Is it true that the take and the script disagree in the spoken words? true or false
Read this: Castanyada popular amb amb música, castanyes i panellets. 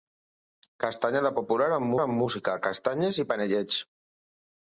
false